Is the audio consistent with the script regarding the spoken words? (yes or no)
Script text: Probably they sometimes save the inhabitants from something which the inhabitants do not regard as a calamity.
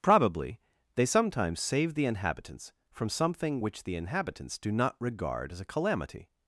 yes